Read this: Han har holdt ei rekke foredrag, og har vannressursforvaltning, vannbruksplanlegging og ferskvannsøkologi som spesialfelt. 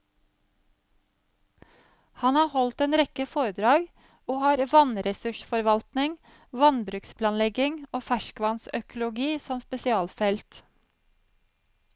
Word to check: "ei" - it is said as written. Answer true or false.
false